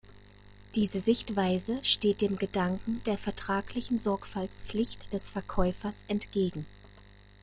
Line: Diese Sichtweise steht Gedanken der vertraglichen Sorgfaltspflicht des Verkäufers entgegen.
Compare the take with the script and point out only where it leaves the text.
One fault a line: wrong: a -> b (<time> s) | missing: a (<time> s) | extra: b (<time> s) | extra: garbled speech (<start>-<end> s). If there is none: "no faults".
extra: dem (2.2 s)